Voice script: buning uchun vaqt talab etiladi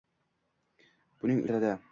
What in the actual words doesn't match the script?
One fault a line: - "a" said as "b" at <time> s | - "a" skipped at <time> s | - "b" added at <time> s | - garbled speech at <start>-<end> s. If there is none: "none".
- "uchun vaqt talab" skipped at 1.4 s